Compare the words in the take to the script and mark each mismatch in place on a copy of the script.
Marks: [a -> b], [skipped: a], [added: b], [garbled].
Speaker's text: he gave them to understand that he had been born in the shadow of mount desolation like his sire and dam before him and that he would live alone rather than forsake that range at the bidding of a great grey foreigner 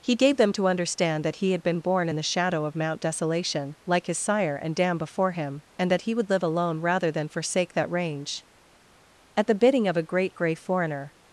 he gave them to understand that he had been born in the shadow of mount desolation like his sire and dam before him and that he would live alone rather than forsake that range at the bidding of a great grey foreigner